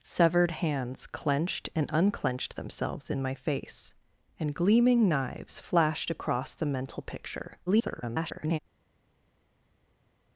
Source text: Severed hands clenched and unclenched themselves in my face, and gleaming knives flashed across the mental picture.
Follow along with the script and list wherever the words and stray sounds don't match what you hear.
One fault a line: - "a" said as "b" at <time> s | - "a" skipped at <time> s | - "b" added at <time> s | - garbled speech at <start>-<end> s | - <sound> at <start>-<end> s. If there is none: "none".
- garbled speech at 7.7-8.6 s